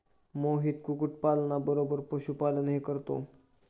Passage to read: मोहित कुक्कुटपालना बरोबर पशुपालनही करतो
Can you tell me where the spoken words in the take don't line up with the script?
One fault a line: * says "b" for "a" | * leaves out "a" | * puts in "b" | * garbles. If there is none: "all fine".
all fine